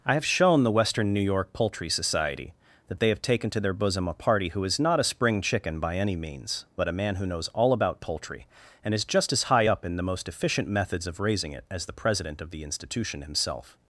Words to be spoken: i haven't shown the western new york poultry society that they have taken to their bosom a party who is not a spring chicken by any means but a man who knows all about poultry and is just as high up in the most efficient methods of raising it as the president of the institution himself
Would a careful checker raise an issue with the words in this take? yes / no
yes